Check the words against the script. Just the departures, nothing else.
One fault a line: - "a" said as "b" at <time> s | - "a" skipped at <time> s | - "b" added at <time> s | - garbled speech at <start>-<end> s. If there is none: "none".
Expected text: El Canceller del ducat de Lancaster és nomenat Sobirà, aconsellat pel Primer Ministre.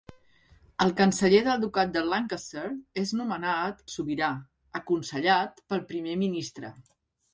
none